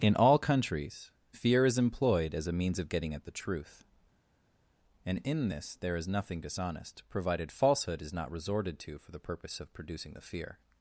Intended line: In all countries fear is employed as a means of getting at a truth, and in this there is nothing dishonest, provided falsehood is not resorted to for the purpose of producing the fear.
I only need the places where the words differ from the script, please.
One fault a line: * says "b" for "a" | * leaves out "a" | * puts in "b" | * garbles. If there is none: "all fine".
* says "the" for "a"